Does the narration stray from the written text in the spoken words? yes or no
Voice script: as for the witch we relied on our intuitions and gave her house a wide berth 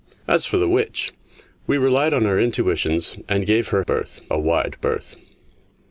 yes